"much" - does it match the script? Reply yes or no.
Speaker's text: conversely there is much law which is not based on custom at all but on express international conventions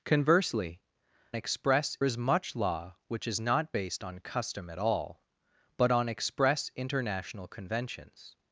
yes